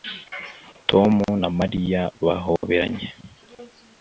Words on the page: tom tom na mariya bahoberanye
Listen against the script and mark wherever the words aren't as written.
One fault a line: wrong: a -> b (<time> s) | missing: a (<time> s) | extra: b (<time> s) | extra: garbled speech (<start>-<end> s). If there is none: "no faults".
missing: tom (1.1 s)